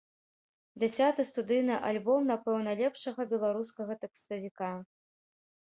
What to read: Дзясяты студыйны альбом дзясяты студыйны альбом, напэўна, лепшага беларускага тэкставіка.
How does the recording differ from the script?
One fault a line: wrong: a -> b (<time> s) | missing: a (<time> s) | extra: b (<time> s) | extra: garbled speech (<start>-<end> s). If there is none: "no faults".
missing: дзясяты студыйны альбом (2.2 s)